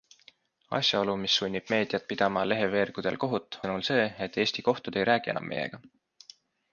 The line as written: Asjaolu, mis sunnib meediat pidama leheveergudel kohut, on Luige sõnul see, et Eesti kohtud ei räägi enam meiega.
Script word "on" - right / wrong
wrong